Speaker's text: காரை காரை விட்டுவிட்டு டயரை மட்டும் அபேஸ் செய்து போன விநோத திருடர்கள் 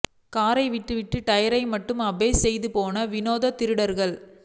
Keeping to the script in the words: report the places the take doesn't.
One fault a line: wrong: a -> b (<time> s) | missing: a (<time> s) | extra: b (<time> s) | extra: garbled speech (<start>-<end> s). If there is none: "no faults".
missing: காரை (0.6 s)